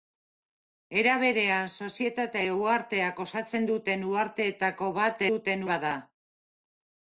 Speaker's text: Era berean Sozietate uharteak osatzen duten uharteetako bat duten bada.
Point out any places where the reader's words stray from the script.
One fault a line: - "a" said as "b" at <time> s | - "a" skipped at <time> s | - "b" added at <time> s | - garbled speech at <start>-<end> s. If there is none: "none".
none